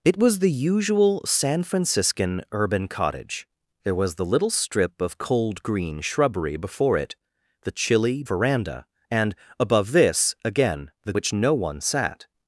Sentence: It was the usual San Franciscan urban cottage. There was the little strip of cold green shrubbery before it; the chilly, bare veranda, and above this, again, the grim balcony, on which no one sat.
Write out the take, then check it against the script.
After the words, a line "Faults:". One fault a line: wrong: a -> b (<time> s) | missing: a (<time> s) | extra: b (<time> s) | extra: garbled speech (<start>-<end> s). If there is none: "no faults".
It was the usual San Franciscan urban cottage. There was the little strip of cold green shrubbery before it; the chilly, veranda, and above this, again, the which no one sat.
Faults:
missing: bare (8.2 s)
missing: grim balcony on (11.1 s)